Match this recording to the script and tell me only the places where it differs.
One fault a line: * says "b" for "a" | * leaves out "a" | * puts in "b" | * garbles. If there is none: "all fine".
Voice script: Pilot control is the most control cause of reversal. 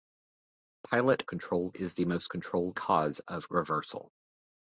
all fine